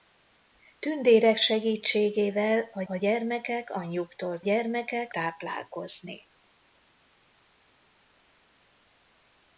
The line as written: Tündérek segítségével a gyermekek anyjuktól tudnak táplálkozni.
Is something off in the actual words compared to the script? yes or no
yes